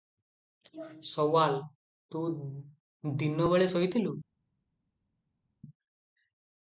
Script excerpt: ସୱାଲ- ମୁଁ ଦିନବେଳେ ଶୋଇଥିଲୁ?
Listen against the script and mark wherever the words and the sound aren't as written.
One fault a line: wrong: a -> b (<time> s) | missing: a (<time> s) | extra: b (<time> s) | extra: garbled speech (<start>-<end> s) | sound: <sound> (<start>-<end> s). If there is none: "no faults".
wrong: ମୁଁ -> ତୁ (2.1 s)